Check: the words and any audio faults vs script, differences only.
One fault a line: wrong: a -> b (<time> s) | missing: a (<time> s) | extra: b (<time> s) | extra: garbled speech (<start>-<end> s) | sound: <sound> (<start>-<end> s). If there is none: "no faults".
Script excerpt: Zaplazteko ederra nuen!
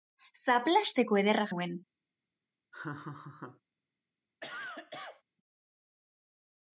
sound: laugh (2.7-3.6 s)
sound: cough (4.4-5.2 s)